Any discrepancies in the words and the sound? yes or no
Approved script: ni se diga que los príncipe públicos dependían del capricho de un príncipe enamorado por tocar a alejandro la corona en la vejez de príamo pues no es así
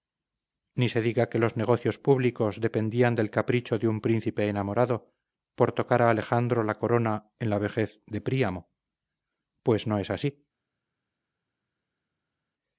yes